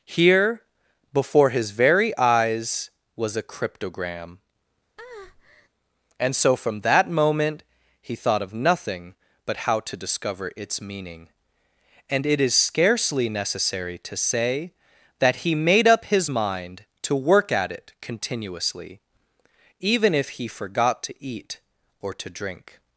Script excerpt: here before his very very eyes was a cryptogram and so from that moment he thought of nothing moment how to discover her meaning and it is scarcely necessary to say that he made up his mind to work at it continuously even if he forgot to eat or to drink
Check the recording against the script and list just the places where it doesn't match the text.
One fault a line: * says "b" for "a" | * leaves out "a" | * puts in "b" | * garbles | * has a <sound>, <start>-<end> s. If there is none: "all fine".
* leaves out "very"
* has a breath, 5.0-5.7 s
* says "but" for "moment"
* says "its" for "her"